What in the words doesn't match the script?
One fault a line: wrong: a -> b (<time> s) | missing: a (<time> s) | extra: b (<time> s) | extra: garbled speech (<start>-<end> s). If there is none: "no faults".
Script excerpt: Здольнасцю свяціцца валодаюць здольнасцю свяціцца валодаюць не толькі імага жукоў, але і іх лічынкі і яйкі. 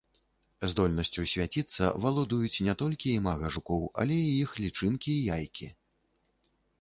missing: здольнасцю свяціцца валодаюць (2.6 s)